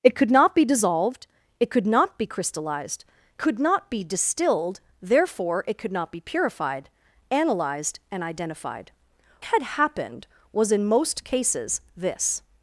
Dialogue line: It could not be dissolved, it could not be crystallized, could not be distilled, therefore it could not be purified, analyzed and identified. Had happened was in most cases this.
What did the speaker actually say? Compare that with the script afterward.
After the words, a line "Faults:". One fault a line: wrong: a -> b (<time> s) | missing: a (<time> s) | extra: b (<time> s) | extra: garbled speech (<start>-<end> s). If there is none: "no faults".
It could not be dissolved, it could not be crystallized, could not be distilled, therefore it could not be purified, analyzed and identified. Had happened was in most cases this.
Faults:
no faults